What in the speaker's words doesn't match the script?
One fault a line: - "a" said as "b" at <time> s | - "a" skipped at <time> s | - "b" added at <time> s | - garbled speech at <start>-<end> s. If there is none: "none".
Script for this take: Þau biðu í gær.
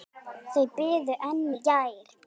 - "enn" added at 1.3 s